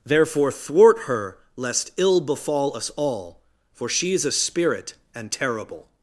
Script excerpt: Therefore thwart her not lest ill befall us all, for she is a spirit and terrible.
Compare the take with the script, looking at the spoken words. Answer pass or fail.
fail